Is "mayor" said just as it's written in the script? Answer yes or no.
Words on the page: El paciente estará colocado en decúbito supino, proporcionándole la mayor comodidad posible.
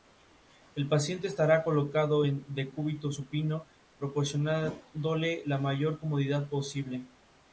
yes